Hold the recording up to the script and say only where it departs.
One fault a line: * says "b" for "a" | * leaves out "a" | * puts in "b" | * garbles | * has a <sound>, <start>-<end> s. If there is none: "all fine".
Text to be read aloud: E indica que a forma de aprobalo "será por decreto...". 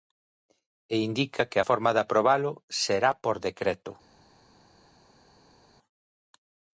all fine